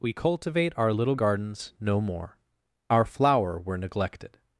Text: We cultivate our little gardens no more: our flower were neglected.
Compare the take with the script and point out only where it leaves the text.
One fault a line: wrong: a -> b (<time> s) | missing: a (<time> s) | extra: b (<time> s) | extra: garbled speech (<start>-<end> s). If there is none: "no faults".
no faults